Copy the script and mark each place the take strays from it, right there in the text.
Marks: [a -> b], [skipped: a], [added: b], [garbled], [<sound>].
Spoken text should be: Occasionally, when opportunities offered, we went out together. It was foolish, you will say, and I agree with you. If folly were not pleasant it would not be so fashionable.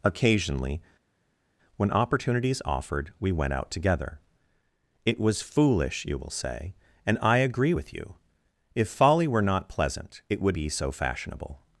Occasionally, when opportunities offered, we went out together. It was foolish, you will say, and I agree with you. If folly were not pleasant it would [skipped: not] be so fashionable.